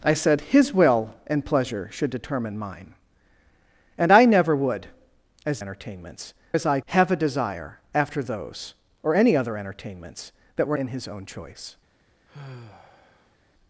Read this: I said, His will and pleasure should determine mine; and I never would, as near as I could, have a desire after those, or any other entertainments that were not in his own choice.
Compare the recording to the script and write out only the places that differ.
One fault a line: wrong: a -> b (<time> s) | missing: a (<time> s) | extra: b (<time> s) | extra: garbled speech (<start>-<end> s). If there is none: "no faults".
wrong: near -> entertainments (5.6 s)
missing: could (6.8 s)
missing: not (10.8 s)